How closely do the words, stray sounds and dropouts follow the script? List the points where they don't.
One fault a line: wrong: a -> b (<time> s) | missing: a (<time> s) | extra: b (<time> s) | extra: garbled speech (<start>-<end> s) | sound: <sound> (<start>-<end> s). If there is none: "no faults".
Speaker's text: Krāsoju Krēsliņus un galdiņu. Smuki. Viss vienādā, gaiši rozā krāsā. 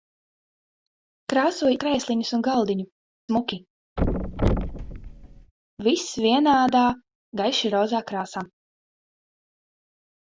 sound: thud (4.0-5.5 s)